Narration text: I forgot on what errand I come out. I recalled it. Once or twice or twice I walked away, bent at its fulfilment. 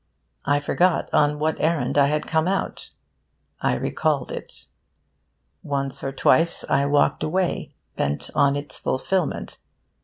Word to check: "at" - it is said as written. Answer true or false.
false